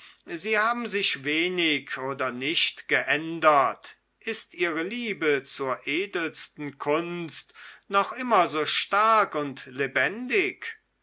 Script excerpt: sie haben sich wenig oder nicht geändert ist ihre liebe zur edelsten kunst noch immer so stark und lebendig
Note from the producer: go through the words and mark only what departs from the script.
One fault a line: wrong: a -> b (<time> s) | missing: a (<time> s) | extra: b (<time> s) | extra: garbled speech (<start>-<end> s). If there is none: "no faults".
no faults